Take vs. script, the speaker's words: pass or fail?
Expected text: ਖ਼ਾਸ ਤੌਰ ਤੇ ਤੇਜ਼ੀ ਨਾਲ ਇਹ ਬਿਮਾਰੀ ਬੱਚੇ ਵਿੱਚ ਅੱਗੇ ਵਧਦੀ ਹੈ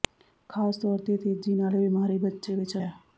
fail